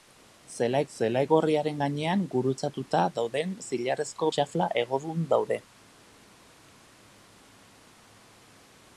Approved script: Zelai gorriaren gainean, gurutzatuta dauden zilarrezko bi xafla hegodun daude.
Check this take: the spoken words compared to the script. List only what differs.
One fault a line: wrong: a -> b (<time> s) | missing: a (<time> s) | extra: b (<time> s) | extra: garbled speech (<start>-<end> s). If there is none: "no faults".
extra: zelai (0.9 s)
missing: bi (4.3 s)